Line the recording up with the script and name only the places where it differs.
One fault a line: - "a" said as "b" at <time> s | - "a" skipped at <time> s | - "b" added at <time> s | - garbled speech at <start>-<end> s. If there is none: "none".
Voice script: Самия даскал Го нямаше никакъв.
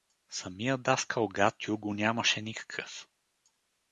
- "Гатю" added at 1.3 s